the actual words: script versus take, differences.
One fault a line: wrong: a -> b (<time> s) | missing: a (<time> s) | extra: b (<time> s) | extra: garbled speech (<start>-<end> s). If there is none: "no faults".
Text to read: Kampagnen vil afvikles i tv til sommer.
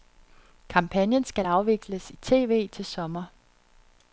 wrong: vil -> skal (1.2 s)